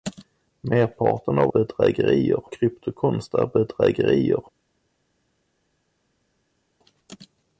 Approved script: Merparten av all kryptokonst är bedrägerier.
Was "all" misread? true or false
true